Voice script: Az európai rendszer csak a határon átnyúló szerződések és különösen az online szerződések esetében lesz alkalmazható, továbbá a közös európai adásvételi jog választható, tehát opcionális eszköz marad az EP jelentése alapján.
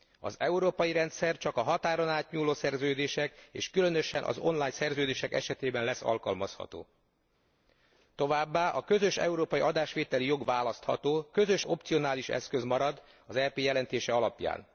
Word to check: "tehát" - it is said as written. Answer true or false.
false